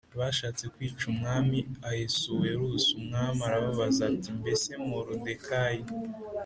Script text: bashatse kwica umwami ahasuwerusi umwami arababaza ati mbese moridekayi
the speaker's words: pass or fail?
pass